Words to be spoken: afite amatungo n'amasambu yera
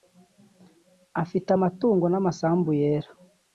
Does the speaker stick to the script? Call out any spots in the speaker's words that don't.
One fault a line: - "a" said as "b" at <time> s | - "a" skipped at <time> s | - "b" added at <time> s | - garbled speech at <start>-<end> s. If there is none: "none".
none